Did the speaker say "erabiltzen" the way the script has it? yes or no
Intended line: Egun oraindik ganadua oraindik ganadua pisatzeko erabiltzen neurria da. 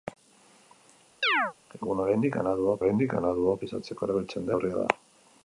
yes